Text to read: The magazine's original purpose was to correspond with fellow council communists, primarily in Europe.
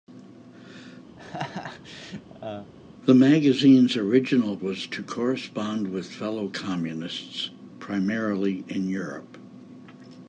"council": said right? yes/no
no